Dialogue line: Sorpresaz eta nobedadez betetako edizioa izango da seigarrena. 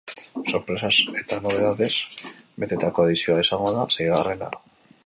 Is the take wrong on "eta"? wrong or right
right